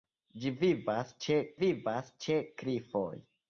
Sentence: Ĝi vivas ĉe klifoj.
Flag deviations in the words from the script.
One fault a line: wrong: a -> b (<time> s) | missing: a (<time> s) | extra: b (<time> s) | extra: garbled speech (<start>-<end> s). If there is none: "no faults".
extra: vivas ĉe (1.6 s)